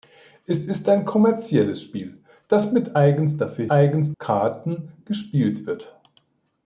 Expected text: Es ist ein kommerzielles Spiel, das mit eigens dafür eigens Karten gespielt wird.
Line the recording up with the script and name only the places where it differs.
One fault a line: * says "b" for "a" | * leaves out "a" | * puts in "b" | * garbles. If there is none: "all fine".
all fine